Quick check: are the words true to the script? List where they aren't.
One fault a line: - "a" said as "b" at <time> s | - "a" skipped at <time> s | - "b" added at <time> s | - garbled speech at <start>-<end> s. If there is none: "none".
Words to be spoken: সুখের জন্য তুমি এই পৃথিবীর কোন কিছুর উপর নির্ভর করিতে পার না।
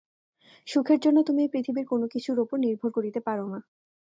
none